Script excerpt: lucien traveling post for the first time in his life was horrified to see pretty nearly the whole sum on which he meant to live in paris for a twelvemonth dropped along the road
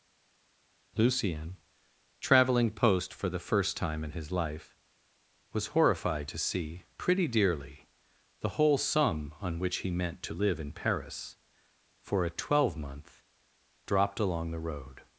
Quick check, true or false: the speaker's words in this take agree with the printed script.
false